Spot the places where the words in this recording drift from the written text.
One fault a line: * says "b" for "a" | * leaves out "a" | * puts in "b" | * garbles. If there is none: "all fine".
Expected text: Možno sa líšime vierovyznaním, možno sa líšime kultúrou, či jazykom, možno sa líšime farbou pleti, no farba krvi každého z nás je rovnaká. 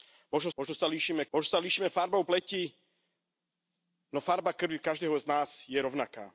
* leaves out "sa líšime vierovyznaním"
* leaves out "kultúrou či jazykom"